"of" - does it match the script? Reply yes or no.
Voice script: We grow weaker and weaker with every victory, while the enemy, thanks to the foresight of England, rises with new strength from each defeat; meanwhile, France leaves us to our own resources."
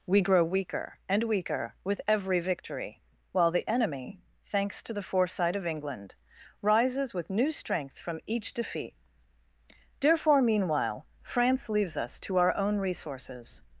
yes